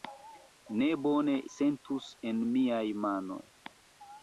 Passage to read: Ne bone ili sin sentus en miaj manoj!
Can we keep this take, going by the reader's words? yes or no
no